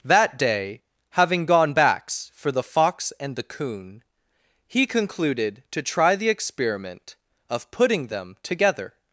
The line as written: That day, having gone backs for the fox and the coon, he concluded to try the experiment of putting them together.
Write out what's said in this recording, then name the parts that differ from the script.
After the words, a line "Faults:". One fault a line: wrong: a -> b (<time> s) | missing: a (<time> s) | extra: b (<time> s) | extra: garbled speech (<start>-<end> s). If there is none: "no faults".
That day, having gone backs for the fox and the coon, he concluded to try the experiment of putting them together.
Faults:
no faults